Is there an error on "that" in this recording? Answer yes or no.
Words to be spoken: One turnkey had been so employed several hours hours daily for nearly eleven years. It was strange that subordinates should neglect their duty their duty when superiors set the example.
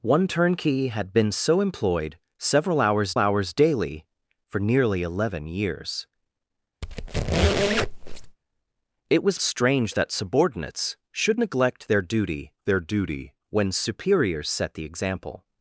no